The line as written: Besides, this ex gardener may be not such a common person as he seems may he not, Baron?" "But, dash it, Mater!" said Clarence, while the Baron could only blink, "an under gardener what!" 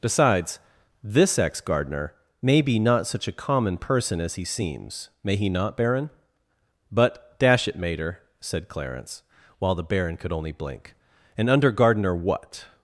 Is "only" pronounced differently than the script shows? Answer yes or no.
no